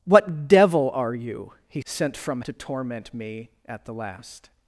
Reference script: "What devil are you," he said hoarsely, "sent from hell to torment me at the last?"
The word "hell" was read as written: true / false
false